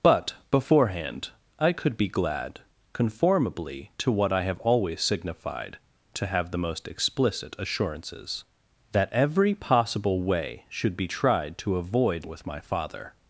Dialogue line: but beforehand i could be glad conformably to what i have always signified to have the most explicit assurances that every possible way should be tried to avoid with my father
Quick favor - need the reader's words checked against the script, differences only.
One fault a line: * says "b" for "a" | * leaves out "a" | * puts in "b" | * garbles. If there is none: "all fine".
all fine